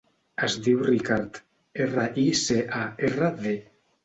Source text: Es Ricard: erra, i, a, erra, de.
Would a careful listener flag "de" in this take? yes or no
no